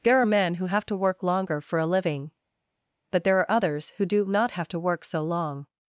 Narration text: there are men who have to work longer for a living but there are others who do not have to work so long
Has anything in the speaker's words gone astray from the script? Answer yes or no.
no